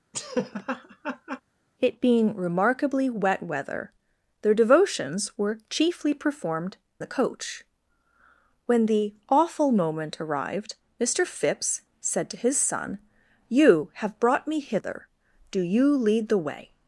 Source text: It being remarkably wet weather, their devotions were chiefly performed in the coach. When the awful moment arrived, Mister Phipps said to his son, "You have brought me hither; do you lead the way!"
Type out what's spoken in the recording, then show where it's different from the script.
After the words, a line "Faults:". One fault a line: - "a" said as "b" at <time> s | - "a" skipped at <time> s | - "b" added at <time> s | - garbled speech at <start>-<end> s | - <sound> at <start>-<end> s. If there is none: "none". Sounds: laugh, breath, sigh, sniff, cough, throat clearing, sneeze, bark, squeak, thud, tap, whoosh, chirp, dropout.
It being remarkably wet weather, their devotions were chiefly performed the coach. When the awful moment arrived, Mister Phipps said to his son, "You have brought me hither; do you lead the way!"
Faults:
- laugh at 0.1-1.4 s
- "in" skipped at 6.8 s